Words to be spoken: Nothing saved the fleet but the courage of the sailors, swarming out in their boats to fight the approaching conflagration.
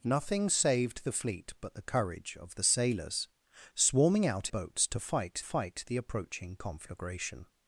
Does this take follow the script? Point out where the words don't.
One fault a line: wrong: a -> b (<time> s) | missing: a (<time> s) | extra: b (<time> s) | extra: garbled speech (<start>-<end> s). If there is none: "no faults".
missing: in their (4.5 s)
extra: fight (5.4 s)